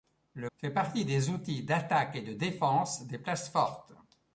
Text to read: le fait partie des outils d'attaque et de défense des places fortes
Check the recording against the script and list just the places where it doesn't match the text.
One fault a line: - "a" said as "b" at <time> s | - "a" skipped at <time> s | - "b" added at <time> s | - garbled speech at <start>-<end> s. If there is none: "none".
none